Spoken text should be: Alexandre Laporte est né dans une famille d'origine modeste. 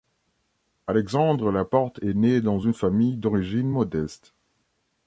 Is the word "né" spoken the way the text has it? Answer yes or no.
yes